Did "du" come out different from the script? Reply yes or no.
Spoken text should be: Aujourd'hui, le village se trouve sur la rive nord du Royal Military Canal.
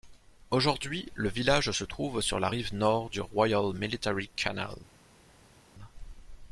no